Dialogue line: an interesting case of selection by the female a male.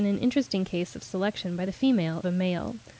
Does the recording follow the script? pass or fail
pass